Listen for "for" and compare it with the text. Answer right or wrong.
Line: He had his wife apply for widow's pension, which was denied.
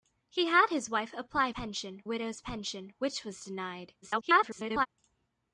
wrong